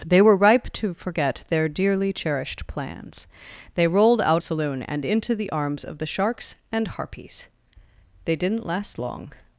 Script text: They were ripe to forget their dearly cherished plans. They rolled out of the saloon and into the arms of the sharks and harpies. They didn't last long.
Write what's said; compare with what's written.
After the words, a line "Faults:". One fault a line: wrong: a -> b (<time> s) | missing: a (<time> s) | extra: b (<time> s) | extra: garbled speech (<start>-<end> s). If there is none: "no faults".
They were ripe to forget their dearly cherished plans. They rolled out saloon and into the arms of the sharks and harpies. They didn't last long.
Faults:
missing: of the (4.4 s)